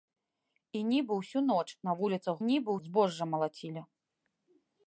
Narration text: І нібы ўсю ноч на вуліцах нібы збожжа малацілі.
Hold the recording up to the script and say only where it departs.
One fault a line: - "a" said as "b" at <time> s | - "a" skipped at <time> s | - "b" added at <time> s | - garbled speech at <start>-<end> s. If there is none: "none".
none